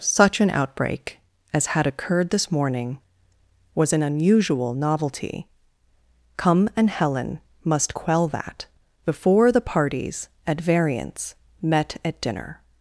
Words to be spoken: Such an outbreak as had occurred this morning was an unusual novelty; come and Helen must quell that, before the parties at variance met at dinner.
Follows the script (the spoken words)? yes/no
yes